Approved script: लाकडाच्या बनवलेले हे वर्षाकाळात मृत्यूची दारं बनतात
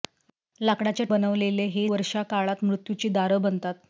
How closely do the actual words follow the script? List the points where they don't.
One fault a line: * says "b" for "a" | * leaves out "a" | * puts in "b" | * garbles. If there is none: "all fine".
all fine